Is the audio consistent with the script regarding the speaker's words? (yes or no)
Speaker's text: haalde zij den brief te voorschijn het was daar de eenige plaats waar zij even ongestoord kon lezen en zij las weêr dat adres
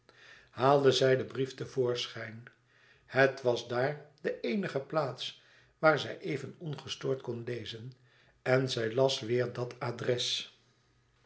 yes